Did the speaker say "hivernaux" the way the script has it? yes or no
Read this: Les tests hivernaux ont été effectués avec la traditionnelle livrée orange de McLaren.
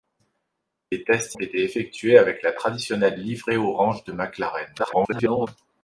no